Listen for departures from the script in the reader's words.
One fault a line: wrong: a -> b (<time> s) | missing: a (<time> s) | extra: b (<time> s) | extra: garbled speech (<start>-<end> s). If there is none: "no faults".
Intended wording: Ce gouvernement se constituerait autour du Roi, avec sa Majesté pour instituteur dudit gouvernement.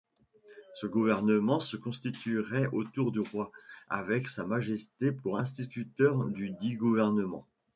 no faults